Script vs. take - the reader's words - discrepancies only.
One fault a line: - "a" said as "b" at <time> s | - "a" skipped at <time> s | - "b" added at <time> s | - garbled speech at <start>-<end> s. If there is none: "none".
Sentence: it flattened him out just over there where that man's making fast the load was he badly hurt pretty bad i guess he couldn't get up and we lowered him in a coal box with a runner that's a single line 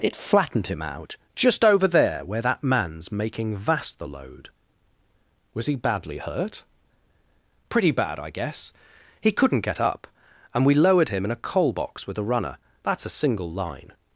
- "fast" said as "vast" at 3.5 s